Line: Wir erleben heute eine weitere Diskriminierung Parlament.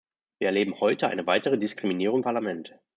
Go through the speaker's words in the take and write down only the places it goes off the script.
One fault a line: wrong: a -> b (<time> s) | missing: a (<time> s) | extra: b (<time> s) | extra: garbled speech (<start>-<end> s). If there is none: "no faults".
no faults